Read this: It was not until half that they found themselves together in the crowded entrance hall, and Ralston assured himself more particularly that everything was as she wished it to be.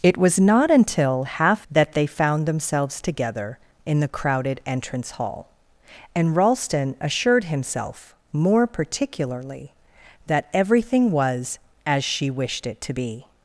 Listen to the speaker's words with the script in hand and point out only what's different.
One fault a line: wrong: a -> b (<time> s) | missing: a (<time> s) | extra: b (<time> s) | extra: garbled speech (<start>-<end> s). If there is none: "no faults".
no faults